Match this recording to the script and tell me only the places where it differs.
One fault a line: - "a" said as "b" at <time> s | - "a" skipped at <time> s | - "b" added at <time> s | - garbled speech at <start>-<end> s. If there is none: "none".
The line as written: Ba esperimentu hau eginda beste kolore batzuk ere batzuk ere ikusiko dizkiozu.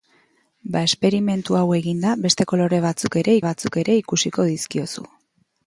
none